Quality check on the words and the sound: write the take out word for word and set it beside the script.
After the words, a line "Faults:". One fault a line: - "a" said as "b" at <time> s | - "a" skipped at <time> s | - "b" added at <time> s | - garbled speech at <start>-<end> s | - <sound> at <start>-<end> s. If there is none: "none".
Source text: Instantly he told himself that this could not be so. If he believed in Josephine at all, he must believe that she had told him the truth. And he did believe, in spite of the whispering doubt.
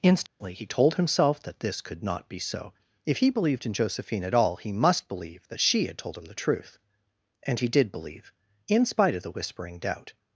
Instantly he told himself that this could not be so. If he believed in Josephine at all, he must believe that she had told him the truth. And he did believe, in spite of the whispering doubt.
Faults:
- dropout at 0.3-0.4 s